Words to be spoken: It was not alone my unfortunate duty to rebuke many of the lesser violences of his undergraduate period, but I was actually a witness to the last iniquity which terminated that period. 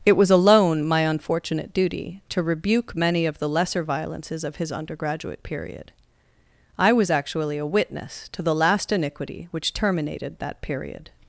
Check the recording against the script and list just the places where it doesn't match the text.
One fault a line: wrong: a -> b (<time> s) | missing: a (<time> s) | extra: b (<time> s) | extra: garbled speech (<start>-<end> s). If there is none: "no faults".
missing: not (0.3 s)
missing: but (5.9 s)